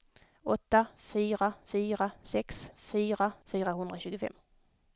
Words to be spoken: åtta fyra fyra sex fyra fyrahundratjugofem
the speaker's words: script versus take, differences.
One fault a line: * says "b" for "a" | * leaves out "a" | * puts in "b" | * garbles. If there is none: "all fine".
all fine